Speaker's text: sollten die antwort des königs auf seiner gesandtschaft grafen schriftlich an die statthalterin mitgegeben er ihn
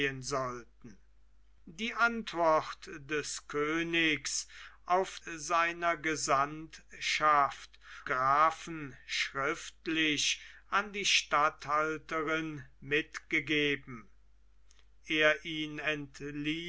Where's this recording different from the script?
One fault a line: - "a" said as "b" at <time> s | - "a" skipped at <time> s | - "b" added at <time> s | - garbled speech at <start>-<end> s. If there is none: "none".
none